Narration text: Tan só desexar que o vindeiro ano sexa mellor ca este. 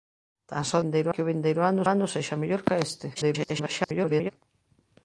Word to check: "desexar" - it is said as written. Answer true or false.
false